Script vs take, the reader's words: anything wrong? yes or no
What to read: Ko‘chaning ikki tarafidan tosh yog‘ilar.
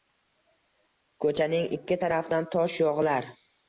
no